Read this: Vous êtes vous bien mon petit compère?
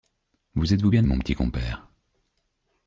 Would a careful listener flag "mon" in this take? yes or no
no